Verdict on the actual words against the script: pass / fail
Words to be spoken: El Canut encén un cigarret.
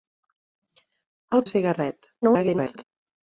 fail